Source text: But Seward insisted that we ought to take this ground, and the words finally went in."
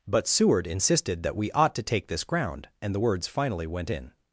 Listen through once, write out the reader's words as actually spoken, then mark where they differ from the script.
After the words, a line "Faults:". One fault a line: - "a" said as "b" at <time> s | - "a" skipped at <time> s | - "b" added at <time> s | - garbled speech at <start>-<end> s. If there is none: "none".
But Seward insisted that we ought to take this ground, and the words finally went in."
Faults:
none